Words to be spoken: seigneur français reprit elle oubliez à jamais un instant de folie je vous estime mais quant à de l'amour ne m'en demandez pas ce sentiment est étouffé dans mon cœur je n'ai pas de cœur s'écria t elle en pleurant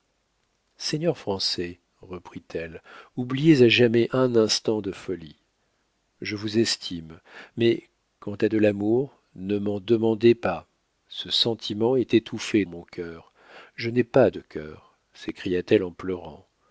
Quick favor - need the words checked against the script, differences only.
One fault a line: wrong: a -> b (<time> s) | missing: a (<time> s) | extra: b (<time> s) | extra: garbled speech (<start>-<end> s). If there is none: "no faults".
missing: dans (12.6 s)